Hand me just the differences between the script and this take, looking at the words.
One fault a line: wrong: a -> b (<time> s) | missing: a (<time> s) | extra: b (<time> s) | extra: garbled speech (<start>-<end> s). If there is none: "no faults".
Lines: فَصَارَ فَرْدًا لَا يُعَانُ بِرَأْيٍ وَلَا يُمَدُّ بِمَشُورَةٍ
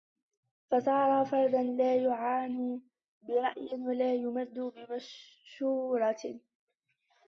no faults